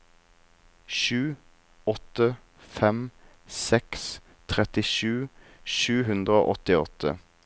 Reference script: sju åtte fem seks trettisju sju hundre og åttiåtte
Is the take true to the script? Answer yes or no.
yes